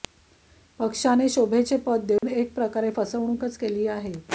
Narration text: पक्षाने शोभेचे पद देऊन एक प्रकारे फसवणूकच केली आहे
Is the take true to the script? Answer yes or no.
yes